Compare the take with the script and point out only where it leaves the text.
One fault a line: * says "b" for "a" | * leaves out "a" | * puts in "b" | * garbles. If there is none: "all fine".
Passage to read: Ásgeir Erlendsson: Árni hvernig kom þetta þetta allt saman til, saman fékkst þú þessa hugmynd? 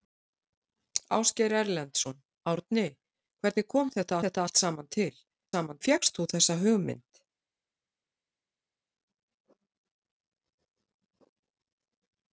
all fine